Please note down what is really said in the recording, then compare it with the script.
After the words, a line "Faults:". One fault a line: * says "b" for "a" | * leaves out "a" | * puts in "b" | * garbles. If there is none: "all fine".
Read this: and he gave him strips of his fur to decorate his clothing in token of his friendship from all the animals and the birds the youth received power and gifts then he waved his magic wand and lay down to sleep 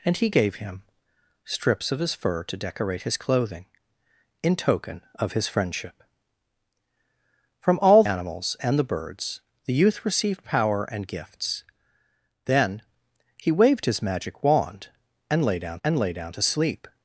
and he gave him strips of his fur to decorate his clothing in token of his friendship from all animals and the birds the youth received power and gifts then he waved his magic wand and lay down and lay down to sleep
Faults:
* leaves out "the"
* puts in "and lay down"